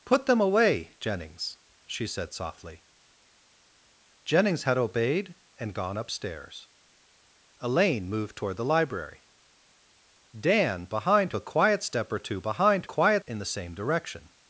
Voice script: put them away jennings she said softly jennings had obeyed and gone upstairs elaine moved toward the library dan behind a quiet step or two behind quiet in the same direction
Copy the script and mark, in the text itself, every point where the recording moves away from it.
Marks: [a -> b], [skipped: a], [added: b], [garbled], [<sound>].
put them away jennings she said softly jennings had obeyed and gone upstairs elaine moved toward the library dan behind a quiet step or two behind quiet in the same direction